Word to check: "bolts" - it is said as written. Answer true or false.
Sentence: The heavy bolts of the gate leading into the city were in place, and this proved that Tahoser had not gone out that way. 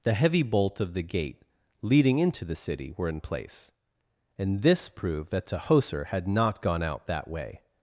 false